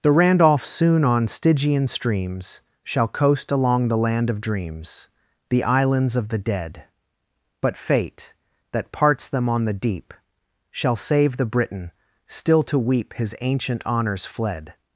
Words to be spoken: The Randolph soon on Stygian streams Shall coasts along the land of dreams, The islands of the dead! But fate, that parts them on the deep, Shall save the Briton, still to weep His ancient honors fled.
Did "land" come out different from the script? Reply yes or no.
no